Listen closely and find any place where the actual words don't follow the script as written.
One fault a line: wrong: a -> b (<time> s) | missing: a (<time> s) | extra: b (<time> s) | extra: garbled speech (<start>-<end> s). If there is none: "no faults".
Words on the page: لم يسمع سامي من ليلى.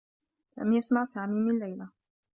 no faults